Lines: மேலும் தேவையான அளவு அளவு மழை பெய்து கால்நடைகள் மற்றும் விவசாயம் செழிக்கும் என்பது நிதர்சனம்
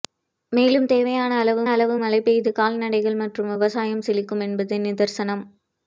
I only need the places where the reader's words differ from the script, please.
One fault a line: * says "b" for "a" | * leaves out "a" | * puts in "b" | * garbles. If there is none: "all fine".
all fine